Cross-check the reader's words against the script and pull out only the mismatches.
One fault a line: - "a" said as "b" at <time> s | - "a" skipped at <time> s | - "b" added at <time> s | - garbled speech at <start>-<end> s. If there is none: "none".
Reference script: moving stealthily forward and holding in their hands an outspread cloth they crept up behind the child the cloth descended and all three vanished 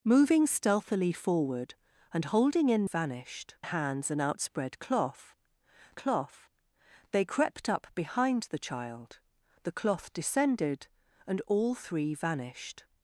- "their" said as "vanished" at 2.8 s
- "cloth" added at 5.9 s